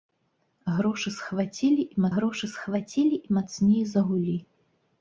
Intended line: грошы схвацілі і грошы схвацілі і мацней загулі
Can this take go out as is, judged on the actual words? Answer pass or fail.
pass